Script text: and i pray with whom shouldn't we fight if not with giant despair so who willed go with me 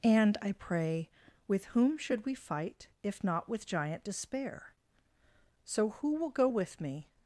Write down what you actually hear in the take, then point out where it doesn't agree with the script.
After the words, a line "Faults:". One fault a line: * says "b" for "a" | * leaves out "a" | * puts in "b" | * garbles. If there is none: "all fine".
and i pray with whom should we fight if not with giant despair so who will go with me
Faults:
* says "should" for "shouldn't"
* says "will" for "willed"